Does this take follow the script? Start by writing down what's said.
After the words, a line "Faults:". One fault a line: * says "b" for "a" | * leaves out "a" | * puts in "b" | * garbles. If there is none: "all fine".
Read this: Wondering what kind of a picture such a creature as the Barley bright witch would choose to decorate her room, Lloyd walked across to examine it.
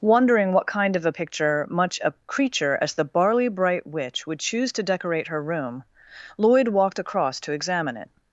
Wondering what kind of a picture much a creature as the Barley bright witch would choose to decorate her room, Lloyd walked across to examine it.
Faults:
* says "much" for "such"